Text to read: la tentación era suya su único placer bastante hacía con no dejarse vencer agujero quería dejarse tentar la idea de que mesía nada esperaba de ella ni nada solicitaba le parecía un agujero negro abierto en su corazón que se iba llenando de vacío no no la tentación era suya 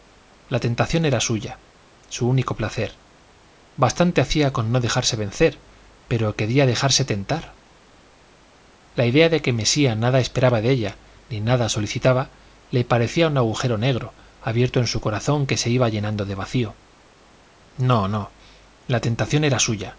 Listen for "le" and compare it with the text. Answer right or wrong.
right